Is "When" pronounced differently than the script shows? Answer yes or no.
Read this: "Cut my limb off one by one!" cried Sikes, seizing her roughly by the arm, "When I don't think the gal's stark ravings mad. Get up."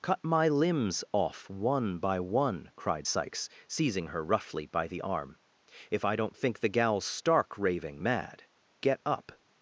yes